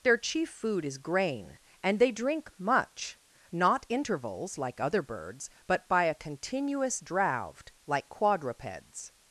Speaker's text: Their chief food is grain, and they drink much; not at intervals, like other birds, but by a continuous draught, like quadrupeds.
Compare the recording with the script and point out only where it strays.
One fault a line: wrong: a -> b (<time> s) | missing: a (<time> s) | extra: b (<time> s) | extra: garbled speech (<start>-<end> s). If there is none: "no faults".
missing: at (3.8 s)